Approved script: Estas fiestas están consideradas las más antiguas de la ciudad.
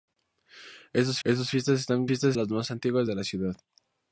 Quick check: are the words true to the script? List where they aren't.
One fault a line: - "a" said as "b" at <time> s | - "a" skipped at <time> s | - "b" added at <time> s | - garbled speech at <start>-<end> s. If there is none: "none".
- "estas" added at 1.2 s
- "consideradas" said as "fiestas" at 2.1 s